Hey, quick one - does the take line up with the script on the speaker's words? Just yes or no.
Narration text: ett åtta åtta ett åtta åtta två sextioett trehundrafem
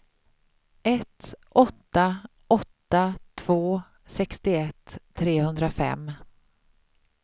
no